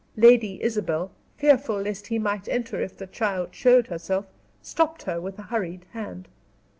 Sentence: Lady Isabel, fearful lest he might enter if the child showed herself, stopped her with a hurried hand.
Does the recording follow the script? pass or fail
pass